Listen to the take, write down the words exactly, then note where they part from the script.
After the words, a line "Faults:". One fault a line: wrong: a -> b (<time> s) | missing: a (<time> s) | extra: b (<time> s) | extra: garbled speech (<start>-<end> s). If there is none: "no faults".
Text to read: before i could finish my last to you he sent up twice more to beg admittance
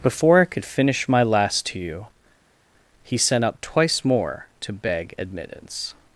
before i could finish my last to you he sent up twice more to beg admittance
Faults:
no faults